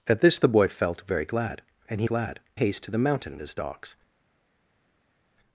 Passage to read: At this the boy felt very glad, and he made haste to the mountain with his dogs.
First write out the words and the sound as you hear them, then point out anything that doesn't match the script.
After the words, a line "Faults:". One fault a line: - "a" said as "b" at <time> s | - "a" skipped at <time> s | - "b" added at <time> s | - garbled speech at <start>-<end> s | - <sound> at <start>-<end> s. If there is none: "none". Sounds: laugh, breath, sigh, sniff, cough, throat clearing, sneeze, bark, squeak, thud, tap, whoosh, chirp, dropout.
At this the boy felt very glad, and he glad haste to the mountain his dogs.
Faults:
- "made" said as "glad" at 2.0 s
- "with" skipped at 3.4 s